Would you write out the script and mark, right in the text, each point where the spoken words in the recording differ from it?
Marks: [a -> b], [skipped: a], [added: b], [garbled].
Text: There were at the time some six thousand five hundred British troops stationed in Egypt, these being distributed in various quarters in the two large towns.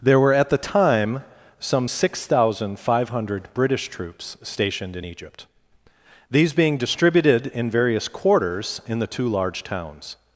There were at the time some six thousand five hundred British troops stationed in Egypt, these being distributed in various quarters in the two large towns.